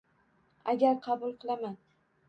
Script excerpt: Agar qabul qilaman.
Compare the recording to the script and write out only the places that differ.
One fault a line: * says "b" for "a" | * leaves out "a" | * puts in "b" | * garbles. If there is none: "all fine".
all fine